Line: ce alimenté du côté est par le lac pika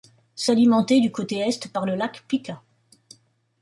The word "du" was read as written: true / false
true